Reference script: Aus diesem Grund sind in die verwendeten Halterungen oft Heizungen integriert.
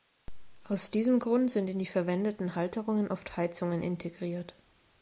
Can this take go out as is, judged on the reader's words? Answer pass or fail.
pass